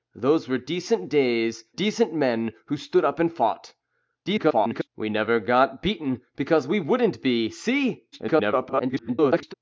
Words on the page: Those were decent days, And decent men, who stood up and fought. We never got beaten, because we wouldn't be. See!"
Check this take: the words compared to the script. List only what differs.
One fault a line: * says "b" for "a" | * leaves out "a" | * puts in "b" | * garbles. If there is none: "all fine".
* leaves out "And"
* garbles
* garbles